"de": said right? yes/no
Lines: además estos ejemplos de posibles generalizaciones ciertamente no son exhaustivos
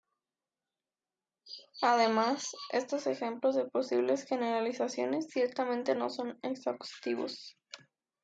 yes